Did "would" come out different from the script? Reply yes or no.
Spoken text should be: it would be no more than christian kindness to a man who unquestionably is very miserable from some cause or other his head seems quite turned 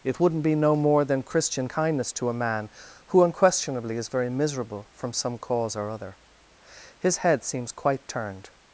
yes